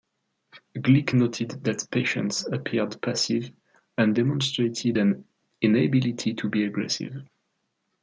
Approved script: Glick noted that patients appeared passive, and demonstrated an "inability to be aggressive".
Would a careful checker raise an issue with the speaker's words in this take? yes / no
no